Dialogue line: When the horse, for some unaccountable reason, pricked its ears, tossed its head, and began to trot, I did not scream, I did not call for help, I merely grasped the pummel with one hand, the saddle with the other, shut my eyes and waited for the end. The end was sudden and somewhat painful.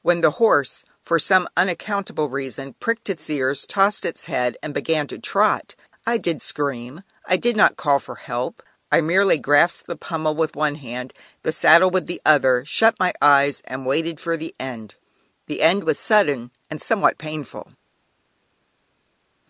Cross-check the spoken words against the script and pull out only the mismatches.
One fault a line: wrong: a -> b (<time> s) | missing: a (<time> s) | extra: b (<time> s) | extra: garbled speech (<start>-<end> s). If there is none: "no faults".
missing: not (6.4 s)